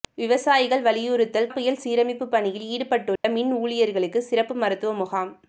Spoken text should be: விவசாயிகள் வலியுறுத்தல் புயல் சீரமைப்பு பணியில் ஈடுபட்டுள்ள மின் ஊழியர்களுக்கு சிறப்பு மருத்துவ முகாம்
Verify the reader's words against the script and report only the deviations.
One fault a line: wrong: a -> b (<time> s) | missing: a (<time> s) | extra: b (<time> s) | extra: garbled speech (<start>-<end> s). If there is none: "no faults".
no faults